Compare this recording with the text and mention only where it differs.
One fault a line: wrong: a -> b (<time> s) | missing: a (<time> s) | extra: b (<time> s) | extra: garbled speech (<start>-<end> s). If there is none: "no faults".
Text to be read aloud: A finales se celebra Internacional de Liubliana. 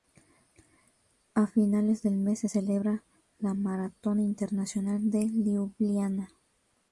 extra: del mes (2.0 s)
extra: la Maratón (3.4 s)